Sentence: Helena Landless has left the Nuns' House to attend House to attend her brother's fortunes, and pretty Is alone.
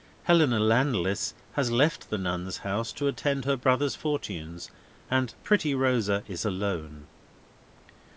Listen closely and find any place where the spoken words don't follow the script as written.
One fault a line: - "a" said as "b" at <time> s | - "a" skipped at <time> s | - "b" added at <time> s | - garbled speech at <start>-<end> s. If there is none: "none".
- "House to attend" skipped at 3.5 s
- "Rosa" added at 5.8 s